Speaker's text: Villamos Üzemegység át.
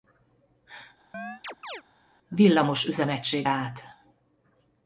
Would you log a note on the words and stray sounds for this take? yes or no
yes